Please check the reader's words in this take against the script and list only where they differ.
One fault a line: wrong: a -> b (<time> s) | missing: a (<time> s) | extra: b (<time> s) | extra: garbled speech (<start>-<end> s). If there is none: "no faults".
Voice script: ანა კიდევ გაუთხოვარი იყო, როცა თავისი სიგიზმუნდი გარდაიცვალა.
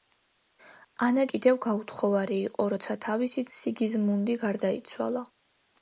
no faults